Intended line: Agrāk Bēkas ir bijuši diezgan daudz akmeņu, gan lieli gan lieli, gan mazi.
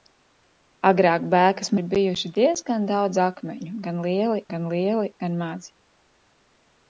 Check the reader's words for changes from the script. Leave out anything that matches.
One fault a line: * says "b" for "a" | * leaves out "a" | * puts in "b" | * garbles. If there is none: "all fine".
all fine